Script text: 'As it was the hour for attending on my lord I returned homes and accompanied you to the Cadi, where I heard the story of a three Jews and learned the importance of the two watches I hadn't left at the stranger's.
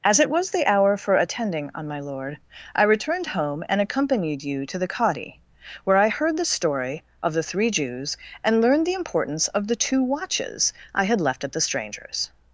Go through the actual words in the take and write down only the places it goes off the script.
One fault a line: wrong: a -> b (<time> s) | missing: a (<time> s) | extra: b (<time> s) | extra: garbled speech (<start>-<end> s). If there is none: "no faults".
wrong: homes -> home (3.3 s)
wrong: a -> the (7.3 s)
wrong: hadn't -> had (11.0 s)